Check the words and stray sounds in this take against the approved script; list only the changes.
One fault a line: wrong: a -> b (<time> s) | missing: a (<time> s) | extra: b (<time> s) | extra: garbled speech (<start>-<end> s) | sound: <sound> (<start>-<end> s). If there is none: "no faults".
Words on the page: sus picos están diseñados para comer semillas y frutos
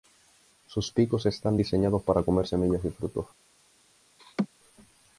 sound: laugh (4.2-4.5 s)